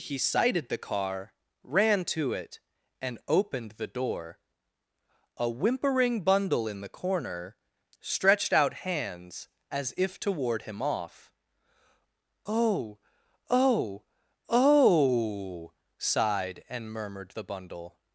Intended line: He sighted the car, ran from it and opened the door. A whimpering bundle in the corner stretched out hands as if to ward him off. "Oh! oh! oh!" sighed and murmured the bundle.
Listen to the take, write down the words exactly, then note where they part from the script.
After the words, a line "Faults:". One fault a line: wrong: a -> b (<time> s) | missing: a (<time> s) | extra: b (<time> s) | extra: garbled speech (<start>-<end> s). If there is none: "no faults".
He sighted the car, ran to it and opened the door. A whimpering bundle in the corner stretched out hands as if to ward him off. "Oh! oh! oh!" sighed and murmured the bundle.
Faults:
wrong: from -> to (2.0 s)